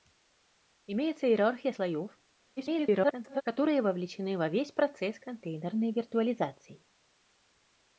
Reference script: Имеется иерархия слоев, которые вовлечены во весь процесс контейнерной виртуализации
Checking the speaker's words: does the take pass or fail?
fail